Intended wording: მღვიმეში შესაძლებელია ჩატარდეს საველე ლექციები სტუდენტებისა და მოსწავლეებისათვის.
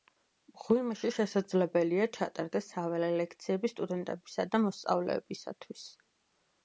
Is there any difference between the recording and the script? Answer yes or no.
no